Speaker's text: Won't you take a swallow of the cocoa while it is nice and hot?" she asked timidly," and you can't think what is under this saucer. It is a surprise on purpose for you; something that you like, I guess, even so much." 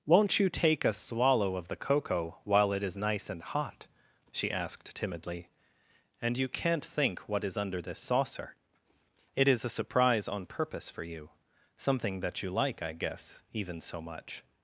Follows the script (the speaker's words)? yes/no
yes